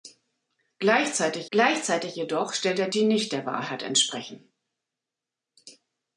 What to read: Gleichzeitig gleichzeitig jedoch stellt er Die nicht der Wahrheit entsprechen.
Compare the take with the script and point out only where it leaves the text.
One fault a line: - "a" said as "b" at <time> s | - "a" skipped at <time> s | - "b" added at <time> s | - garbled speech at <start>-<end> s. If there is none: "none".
none